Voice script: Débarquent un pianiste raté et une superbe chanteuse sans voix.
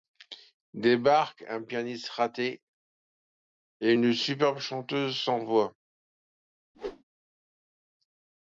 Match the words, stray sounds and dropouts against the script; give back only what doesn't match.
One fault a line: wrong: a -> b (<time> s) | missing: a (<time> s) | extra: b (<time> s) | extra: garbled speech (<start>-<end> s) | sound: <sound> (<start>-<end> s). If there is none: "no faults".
sound: whoosh (6.7-7.0 s)